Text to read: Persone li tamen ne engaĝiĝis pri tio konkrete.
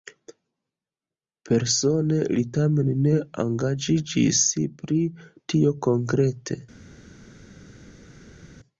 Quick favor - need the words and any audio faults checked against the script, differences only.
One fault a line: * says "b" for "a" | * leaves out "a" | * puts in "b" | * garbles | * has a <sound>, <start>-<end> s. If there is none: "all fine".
all fine